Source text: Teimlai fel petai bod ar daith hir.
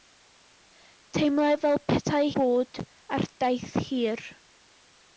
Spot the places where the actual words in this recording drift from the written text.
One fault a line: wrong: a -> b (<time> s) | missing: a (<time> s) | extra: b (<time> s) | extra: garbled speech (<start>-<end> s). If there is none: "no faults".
no faults